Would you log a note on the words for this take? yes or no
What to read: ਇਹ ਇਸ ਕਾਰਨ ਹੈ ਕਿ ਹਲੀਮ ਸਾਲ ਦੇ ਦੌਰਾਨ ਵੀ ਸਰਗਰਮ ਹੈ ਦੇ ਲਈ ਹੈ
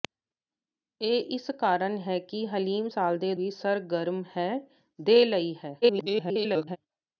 yes